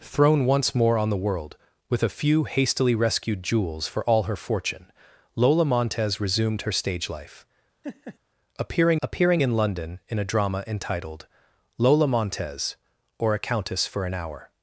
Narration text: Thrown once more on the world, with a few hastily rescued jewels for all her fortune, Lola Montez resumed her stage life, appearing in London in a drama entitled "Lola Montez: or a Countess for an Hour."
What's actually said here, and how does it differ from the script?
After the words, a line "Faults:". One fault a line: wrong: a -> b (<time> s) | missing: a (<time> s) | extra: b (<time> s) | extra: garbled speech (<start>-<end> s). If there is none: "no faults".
Thrown once more on the world, with a few hastily rescued jewels for all her fortune, Lola Montez resumed her stage life, appearing appearing in London in a drama entitled "Lola Montez: or a Countess for an Hour."
Faults:
extra: appearing (9.0 s)